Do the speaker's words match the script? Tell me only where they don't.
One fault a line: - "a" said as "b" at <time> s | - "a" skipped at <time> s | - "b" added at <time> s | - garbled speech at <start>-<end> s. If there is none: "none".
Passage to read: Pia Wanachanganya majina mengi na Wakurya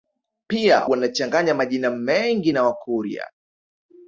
none